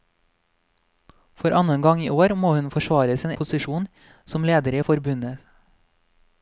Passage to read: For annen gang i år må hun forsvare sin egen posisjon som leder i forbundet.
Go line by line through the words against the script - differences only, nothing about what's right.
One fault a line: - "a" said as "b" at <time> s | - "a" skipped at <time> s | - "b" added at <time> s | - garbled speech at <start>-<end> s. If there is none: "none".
- "egen" skipped at 3.3 s